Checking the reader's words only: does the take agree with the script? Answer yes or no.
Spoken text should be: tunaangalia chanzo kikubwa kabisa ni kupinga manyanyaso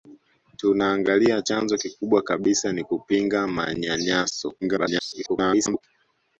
no